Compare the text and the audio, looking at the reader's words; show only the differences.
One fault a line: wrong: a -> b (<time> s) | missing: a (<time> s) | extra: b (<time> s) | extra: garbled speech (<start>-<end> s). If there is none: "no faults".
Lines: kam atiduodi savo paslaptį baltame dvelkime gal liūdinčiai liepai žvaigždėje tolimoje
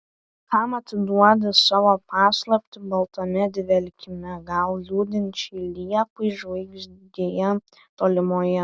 no faults